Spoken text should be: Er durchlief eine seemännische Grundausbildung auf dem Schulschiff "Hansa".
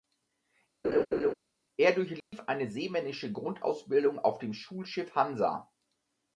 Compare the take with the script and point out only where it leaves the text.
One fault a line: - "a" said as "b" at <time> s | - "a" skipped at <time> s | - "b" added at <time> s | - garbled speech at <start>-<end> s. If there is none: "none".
none